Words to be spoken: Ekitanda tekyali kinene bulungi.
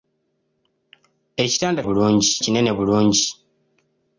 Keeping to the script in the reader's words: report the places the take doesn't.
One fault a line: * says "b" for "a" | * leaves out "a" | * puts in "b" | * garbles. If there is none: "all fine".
* says "bulungi" for "tekyali"